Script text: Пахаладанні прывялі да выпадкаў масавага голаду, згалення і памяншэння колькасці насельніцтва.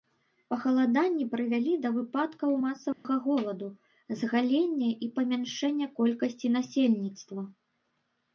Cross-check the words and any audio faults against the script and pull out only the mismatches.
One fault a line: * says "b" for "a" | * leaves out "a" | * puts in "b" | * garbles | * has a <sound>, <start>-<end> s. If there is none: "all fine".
* has a dropout, 2.9-3.0 s